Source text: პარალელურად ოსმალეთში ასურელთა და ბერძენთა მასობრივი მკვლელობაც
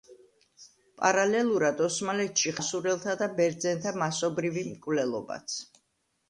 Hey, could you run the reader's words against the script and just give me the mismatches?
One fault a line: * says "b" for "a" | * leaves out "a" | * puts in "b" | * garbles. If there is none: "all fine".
all fine